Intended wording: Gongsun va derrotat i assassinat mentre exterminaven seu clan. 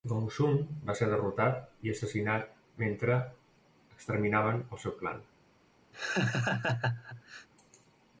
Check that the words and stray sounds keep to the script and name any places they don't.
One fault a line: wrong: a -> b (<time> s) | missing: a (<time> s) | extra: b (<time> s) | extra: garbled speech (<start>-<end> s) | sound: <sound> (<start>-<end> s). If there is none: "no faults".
extra: ser (1.0 s)
extra: el (4.7 s)
sound: laugh (5.9-7.5 s)